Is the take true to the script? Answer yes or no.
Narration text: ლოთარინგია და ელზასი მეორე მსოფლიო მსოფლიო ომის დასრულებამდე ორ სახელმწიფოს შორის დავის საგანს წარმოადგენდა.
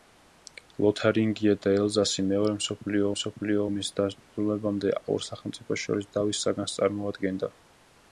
yes